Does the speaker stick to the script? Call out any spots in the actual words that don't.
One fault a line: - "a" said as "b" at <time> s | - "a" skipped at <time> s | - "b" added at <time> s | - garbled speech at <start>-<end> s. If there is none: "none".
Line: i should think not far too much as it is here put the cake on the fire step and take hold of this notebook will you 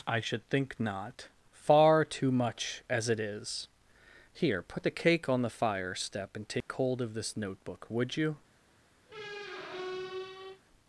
- "will" said as "would" at 7.9 s